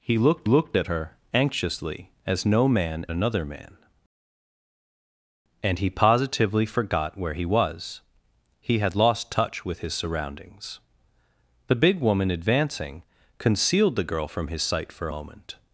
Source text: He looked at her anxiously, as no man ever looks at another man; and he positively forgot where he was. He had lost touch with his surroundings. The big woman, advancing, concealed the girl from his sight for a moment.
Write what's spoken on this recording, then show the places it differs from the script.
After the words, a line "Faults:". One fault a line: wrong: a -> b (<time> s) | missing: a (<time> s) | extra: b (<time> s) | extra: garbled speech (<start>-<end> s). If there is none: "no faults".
He looked looked at her anxiously, as no man another man; and he positively forgot where he was. He had lost touch with his surroundings. The big woman, advancing, concealed the girl from his sight for moment.
Faults:
extra: looked (0.4 s)
missing: ever looks at (3.1 s)
missing: a (15.1 s)